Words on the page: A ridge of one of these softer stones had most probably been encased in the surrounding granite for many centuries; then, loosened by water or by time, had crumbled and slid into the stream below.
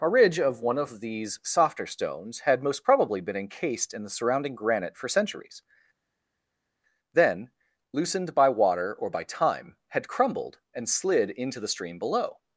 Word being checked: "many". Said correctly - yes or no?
no